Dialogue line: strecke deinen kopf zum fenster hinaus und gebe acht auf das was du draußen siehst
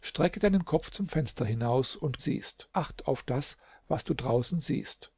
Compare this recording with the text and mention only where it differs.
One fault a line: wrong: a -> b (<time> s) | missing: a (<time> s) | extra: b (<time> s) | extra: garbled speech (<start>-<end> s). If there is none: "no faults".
wrong: gebe -> siehst (2.2 s)